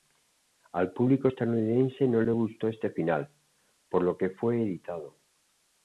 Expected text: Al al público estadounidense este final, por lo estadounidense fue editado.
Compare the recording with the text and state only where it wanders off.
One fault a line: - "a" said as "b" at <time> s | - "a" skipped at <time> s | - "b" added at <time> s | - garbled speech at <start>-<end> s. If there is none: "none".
- "al" skipped at 0.9 s
- "no le gustó" added at 2.1 s
- "estadounidense" said as "que" at 4.2 s